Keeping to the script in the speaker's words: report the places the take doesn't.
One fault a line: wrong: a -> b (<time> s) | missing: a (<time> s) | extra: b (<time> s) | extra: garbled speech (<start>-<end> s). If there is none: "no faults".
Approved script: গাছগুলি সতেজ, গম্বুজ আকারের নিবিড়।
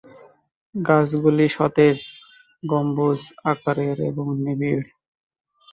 extra: এবং (4.1 s)